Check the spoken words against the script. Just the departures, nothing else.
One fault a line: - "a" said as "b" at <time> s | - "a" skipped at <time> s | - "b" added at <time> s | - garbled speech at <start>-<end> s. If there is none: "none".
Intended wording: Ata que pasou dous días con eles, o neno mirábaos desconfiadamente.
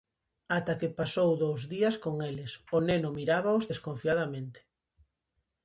none